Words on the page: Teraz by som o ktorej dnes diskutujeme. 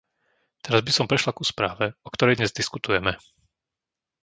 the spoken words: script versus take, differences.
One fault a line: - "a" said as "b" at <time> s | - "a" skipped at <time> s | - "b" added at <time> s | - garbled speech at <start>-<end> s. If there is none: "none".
- "prešla ku správe" added at 1.1 s